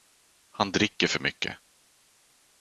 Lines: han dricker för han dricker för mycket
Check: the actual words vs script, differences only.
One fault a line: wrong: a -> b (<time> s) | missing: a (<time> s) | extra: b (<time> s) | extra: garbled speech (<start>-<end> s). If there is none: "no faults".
missing: han dricker för (1.2 s)